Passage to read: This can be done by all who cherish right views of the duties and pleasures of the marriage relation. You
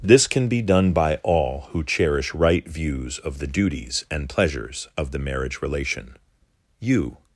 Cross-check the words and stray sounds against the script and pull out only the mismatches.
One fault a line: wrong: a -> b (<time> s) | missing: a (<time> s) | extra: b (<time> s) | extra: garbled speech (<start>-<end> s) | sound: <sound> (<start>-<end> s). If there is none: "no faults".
no faults